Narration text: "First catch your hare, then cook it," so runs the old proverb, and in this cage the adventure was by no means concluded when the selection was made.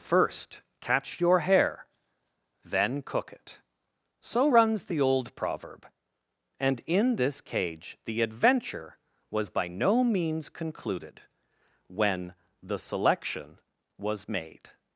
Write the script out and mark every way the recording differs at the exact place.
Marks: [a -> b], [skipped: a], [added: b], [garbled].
"First catch your hare, then cook it," so runs the old proverb, and in this cage the adventure was by no means concluded when the selection was made.